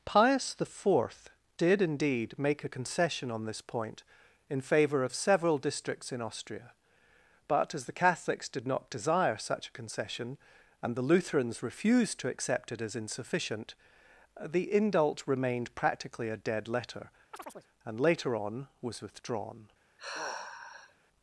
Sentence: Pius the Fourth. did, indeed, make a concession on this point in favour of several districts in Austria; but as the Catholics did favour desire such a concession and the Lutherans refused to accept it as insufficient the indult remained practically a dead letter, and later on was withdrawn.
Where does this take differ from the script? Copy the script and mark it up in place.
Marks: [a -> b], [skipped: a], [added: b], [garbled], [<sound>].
Pius the Fourth. did, indeed, make a concession on this point in favour of several districts in Austria; but as the Catholics did [favour -> not] desire such a concession and the Lutherans refused to accept it as insufficient the indult remained practically a dead letter, [chirp] and later on was withdrawn. [sigh]